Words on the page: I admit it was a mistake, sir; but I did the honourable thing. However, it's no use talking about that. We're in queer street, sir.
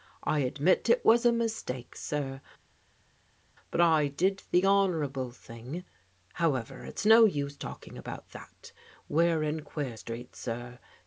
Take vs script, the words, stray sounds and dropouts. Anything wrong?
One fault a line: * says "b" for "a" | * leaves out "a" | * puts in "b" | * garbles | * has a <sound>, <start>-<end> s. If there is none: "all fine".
all fine